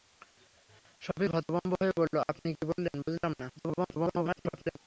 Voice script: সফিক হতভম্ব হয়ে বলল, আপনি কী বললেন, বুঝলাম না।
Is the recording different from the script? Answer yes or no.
yes